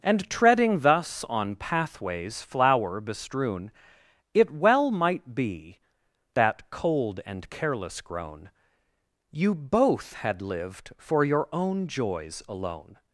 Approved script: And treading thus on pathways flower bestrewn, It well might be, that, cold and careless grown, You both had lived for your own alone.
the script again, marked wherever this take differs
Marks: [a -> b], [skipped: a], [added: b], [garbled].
And treading thus on pathways flower bestrewn, It well might be, that, cold and careless grown, You both had lived for your own [added: joys] alone.